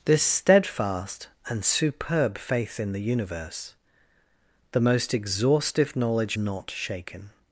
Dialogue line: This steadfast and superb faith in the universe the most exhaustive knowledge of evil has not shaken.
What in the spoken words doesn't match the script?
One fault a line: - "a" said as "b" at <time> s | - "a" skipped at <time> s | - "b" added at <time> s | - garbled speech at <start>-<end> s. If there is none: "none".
- "of evil has" skipped at 6.4 s